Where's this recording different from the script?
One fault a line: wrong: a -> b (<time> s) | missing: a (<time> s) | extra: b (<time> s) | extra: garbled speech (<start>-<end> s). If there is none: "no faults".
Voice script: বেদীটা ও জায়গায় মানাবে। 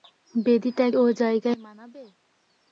no faults